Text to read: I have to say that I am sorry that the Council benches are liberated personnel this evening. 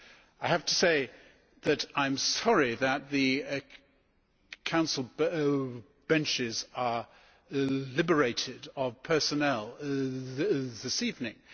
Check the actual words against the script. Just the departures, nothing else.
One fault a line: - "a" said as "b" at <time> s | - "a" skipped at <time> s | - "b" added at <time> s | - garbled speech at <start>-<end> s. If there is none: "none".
- "of" added at 8.8 s